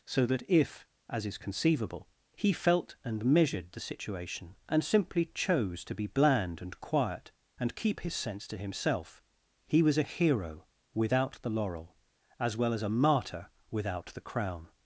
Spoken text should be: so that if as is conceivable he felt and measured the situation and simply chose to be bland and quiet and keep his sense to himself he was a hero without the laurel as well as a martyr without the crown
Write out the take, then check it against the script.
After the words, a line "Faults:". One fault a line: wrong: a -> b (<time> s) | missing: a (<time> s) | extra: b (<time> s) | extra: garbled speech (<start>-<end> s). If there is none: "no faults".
so that if as is conceivable he felt and measured the situation and simply chose to be bland and quiet and keep his sense to himself he was a hero without the laurel as well as a martyr without the crown
Faults:
no faults